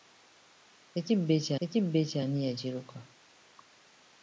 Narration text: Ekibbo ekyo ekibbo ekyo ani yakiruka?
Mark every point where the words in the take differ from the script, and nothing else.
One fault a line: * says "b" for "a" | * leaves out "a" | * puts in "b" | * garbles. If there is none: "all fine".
all fine